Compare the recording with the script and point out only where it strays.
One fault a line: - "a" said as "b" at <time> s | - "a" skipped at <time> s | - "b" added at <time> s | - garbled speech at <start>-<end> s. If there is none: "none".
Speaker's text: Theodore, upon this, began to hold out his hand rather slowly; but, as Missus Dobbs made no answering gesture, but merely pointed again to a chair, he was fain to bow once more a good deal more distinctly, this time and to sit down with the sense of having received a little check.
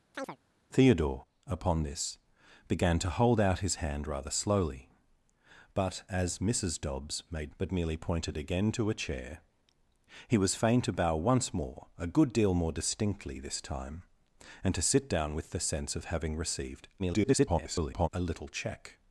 - "no answering gesture" skipped at 7.6 s
- garbled speech at 17.0-18.1 s